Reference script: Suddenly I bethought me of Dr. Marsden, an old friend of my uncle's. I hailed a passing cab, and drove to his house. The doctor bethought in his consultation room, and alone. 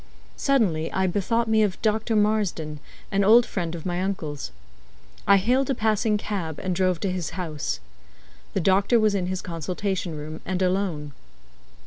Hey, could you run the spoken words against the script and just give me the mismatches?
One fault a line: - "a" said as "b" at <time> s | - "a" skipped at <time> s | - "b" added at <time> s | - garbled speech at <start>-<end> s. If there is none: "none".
- "bethought" said as "was" at 9.0 s